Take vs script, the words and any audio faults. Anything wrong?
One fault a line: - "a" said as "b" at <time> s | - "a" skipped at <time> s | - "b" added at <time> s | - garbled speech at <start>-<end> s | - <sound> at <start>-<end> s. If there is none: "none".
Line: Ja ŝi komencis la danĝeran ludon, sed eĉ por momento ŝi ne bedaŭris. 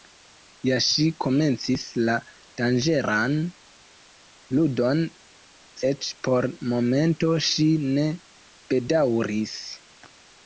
- "sed" skipped at 5.0 s